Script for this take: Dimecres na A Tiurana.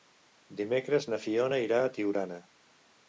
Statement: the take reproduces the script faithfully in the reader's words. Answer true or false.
false